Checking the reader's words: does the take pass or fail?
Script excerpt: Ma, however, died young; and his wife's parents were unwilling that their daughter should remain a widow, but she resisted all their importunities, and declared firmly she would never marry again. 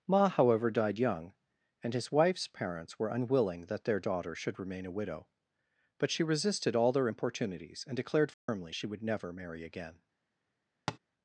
pass